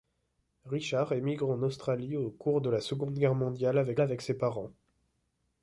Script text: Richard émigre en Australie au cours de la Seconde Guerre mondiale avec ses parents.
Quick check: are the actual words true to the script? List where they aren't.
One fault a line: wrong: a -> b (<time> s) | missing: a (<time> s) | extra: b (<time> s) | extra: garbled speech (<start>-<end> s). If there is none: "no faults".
extra: avec (4.0 s)